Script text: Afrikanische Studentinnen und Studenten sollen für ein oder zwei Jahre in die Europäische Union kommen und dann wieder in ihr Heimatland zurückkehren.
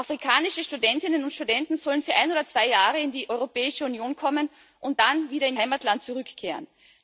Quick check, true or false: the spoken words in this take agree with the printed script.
false